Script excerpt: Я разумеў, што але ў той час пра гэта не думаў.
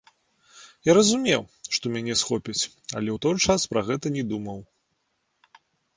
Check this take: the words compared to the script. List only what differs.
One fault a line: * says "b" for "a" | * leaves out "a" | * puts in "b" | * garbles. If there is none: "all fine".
* puts in "мяне схопяць"